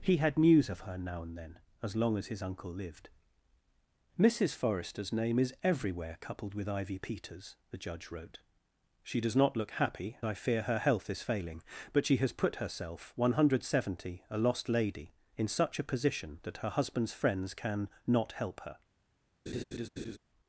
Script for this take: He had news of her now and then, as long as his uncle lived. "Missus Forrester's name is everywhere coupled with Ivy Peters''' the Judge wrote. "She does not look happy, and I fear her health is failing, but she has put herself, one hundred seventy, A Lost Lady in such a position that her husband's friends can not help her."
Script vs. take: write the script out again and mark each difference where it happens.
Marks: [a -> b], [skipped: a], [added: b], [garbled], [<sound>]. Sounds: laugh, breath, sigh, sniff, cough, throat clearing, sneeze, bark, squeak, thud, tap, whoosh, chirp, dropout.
He had news of her now and then, as long as his uncle lived. "Missus Forrester's name is everywhere coupled with Ivy Peters''' the Judge wrote. "She does not look happy, [skipped: and] I fear her health is failing, but she has put herself, one hundred seventy, A Lost Lady in such a position that her husband's friends can not help her." [laugh]